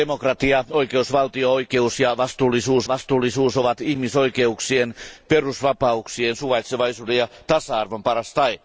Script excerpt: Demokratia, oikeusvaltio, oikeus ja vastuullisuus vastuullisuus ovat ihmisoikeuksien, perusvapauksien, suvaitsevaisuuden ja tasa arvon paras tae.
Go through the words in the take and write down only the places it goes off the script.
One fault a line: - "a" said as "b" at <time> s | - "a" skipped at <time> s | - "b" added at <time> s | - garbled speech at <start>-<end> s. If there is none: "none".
none